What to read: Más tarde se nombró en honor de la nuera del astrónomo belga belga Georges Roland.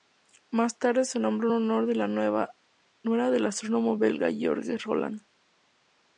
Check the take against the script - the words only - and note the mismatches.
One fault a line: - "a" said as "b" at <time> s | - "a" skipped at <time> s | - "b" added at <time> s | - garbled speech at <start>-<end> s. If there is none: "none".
- "belga" skipped at 4.3 s